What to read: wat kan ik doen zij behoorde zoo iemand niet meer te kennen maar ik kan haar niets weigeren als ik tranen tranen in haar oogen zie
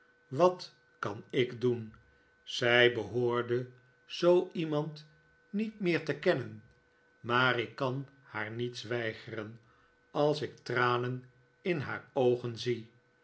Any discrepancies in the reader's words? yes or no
yes